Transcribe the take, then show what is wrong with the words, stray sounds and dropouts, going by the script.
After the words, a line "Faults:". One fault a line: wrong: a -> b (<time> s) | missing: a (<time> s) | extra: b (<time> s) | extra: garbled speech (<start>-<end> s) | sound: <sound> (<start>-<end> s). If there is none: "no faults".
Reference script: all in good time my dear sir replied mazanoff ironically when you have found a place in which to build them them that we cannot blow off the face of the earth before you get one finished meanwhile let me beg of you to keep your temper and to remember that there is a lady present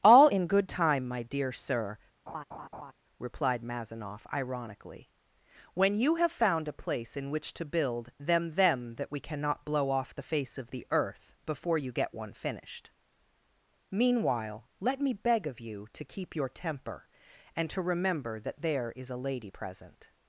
all in good time my dear sir replied mazanoff ironically when you have found a place in which to build them them that we cannot blow off the face of the earth before you get one finished meanwhile let me beg of you to keep your temper and to remember that there is a lady present
Faults:
sound: laugh (2.3-2.9 s)